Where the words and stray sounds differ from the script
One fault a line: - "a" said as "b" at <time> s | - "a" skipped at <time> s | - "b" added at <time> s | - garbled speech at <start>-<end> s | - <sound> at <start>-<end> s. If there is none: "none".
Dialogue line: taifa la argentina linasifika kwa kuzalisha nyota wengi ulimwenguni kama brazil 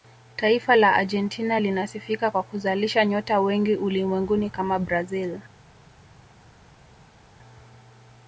none